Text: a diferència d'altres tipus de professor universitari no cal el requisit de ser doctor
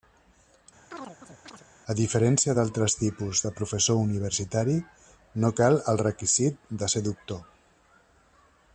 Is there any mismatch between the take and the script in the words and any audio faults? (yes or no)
yes